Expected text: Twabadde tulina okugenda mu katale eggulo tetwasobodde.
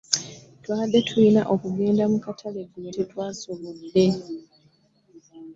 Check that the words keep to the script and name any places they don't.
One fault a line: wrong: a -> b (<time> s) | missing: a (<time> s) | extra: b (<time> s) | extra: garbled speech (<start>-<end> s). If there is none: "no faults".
no faults